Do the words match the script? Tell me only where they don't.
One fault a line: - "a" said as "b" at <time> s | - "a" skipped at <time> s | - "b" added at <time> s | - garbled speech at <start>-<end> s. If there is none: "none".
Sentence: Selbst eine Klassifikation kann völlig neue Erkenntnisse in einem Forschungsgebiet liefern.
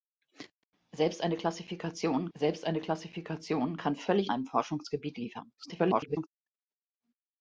- "kann völlig neue Erkenntnisse in" said as "selbst eine Klassifikation kann völlig" at 2.3 s
- garbled speech at 5.6-6.3 s